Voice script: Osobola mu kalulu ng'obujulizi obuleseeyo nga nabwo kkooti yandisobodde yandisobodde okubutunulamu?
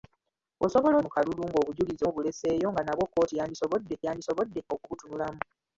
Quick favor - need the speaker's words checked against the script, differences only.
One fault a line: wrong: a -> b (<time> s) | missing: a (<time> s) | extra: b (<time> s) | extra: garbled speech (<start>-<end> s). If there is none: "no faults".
no faults